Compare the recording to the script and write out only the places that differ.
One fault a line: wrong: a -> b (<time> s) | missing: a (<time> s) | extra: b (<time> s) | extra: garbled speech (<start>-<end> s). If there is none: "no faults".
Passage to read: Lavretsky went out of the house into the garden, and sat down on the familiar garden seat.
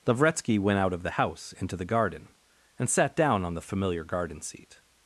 no faults